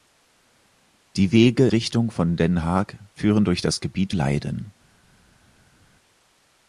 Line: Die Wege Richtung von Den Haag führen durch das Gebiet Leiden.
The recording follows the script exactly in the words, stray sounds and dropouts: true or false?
true